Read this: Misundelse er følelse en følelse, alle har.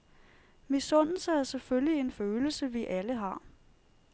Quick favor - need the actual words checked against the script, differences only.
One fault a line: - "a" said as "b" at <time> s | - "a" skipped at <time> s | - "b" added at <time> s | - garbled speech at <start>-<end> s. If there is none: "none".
- "følelse" said as "selvfølgelig" at 1.4 s
- "vi" added at 2.7 s